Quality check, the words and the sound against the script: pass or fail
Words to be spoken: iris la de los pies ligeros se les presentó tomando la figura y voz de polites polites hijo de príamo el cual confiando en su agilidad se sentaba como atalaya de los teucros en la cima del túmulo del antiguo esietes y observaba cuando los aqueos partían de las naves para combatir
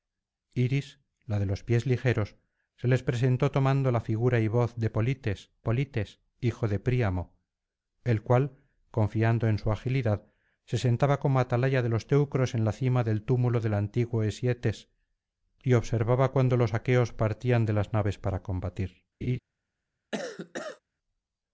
fail